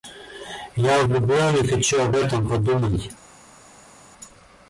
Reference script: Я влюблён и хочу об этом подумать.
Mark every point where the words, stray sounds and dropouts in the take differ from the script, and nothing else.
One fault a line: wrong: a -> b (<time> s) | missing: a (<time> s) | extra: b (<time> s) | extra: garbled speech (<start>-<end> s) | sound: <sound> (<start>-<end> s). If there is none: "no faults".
no faults